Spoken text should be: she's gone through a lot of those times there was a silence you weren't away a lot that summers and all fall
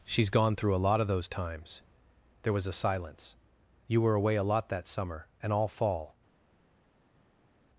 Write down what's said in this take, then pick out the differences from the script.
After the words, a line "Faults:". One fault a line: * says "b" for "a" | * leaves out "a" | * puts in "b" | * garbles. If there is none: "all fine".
she's gone through a lot of those times there was a silence you were away a lot that summer and all fall
Faults:
* says "were" for "weren't"
* says "summer" for "summers"